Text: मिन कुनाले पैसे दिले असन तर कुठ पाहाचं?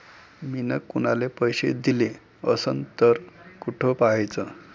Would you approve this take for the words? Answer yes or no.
yes